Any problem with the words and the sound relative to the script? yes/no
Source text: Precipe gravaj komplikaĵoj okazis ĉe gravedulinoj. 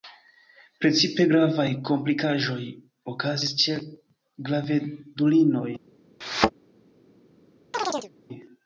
yes